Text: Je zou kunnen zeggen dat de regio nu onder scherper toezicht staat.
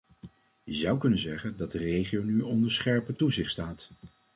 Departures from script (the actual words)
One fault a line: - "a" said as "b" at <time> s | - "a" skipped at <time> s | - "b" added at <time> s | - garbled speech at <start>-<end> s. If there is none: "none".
none